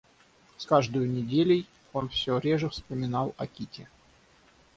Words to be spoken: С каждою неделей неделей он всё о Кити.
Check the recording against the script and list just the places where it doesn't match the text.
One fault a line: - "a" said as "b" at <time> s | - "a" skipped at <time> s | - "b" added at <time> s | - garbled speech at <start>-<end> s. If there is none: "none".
- "неделей" skipped at 1.7 s
- "реже вспоминал" added at 2.4 s